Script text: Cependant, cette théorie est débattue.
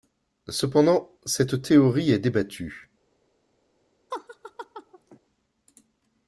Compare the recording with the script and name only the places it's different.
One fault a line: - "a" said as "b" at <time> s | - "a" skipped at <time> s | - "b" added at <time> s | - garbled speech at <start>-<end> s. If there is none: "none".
none